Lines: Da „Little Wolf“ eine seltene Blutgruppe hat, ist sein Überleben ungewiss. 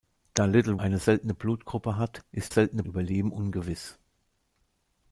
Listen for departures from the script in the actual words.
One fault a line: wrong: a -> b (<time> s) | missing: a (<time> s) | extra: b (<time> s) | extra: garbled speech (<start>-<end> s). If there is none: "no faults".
missing: Wolf (0.8 s)
wrong: sein -> seltene (2.5 s)